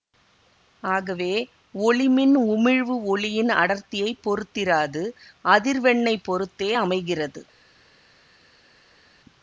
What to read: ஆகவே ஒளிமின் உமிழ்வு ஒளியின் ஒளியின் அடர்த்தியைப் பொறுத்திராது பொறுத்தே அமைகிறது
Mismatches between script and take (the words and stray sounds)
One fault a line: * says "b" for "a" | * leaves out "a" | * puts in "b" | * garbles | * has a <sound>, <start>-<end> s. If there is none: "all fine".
* leaves out "ஒளியின்"
* puts in "அதிர்வெண்ணைப்"